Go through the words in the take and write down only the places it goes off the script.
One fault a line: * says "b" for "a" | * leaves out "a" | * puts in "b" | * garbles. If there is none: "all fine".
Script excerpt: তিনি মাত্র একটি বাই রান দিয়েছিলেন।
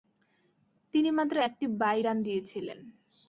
all fine